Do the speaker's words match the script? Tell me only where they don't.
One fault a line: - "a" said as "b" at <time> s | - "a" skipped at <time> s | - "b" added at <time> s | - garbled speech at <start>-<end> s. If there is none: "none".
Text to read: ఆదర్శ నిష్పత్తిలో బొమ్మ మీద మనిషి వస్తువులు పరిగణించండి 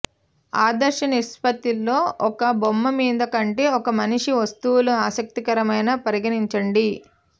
- "ఒక" added at 2.3 s
- "కంటే ఒక" added at 3.4 s
- "ఆసక్తికరమైన" added at 5.0 s